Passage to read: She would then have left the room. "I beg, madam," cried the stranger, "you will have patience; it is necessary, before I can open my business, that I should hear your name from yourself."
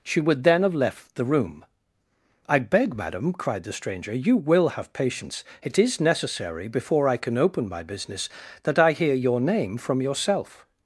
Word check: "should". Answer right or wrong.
wrong